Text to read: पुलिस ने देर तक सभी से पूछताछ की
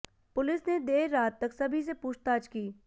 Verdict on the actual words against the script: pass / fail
fail